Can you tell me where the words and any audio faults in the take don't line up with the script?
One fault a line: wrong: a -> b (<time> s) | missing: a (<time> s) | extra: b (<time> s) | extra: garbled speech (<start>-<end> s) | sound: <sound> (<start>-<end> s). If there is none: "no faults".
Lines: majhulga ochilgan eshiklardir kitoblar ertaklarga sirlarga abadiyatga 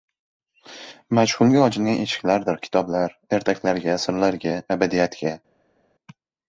no faults